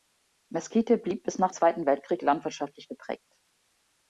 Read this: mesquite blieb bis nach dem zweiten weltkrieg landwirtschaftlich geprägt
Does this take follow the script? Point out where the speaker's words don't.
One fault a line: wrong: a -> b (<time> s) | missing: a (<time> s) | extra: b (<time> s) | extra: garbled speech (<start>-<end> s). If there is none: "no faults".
missing: dem (1.5 s)